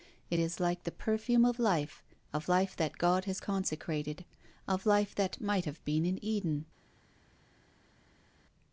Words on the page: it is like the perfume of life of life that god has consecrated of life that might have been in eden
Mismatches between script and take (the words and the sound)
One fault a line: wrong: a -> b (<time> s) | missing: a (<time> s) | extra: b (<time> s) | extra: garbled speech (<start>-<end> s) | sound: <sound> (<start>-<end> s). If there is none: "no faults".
no faults